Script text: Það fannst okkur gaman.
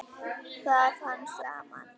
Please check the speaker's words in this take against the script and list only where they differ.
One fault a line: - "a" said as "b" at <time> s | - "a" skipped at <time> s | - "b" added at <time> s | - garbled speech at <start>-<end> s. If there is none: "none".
- "okkur" skipped at 1.4 s